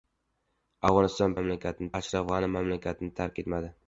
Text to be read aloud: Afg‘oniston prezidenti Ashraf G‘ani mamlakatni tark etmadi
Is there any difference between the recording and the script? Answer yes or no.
yes